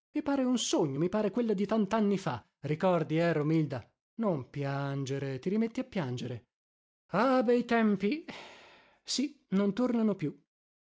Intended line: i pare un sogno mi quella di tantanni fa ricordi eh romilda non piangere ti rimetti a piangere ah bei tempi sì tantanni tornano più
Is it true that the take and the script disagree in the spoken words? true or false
true